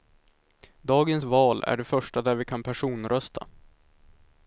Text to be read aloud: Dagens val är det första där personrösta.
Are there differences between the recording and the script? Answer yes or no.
yes